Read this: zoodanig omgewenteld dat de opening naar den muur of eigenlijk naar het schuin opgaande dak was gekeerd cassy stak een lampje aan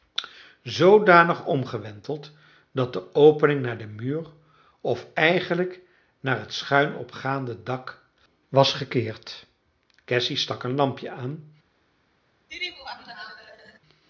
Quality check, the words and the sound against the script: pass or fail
fail